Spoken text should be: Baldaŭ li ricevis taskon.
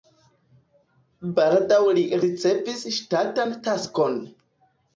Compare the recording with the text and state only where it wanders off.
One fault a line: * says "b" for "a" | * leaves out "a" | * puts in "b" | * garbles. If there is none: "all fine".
* puts in "ŝtatan"